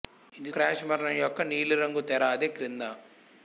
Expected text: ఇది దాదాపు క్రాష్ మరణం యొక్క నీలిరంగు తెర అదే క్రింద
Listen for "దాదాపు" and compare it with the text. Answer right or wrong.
wrong